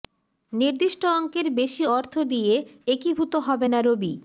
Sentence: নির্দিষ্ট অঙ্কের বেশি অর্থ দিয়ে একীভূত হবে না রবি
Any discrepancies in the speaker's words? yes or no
no